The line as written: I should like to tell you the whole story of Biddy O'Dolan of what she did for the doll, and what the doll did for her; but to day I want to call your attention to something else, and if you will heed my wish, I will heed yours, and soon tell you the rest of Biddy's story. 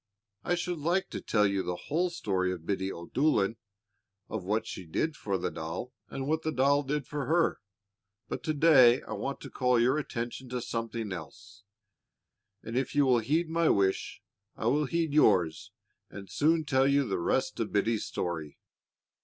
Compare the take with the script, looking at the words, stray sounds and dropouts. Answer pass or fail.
pass